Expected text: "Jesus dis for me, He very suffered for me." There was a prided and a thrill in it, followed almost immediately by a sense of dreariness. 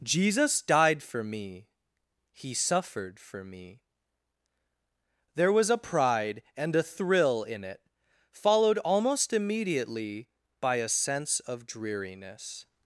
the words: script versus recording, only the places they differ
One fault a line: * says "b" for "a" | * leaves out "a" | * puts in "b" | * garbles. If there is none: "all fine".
* says "died" for "dis"
* leaves out "very"
* says "pride" for "prided"